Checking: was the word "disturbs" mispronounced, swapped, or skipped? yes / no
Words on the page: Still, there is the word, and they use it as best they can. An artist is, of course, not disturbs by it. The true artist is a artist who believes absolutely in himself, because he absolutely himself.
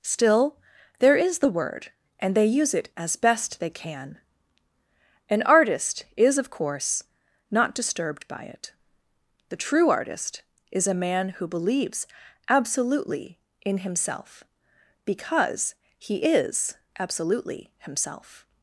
yes